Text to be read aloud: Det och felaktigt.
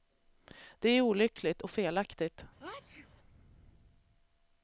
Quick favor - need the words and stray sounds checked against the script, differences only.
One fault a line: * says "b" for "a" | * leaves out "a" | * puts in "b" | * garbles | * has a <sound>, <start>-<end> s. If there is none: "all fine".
* puts in "är olyckligt"
* has a sneeze, 2.6-3.1 s